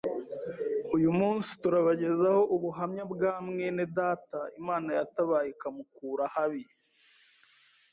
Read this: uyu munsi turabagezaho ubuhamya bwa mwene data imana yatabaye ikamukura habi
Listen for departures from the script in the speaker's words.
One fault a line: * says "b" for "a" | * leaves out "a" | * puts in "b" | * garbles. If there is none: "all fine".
all fine